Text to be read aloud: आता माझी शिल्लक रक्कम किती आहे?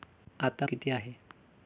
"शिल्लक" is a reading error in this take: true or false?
true